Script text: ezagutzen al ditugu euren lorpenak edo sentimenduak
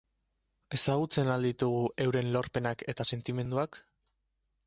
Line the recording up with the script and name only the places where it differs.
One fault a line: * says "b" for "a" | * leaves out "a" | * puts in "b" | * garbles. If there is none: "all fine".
* says "eta" for "edo"